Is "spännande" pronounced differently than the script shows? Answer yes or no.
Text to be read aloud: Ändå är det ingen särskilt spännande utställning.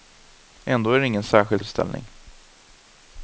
yes